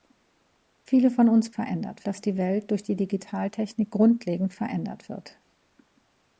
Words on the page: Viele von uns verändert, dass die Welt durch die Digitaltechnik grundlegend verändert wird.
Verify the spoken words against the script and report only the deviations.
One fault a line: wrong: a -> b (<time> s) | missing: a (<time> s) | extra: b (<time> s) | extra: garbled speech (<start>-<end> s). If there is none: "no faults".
no faults